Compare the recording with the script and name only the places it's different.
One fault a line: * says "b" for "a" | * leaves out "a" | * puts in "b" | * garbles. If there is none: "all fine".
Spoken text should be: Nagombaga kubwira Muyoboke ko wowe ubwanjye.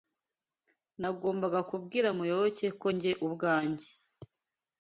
* says "njye" for "wowe"